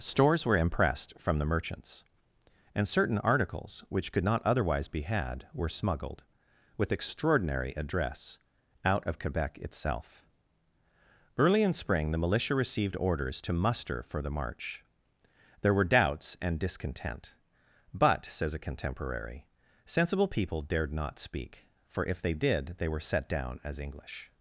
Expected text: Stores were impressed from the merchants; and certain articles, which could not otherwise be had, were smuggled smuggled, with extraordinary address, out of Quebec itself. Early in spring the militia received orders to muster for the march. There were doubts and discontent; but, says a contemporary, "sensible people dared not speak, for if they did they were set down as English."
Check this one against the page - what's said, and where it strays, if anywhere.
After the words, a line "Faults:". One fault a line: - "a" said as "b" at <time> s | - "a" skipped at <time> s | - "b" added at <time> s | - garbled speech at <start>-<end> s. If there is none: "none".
Stores were impressed from the merchants; and certain articles, which could not otherwise be had, were smuggled, with extraordinary address, out of Quebec itself. Early in spring the militia received orders to muster for the march. There were doubts and discontent; but, says a contemporary, "sensible people dared not speak, for if they did they were set down as English."
Faults:
- "smuggled" skipped at 6.2 s